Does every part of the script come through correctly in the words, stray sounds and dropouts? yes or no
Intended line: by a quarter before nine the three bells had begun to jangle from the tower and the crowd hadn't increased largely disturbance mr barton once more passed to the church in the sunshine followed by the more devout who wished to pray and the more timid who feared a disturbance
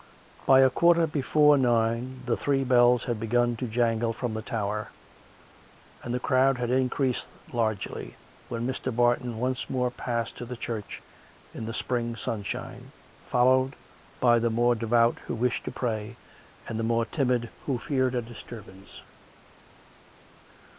no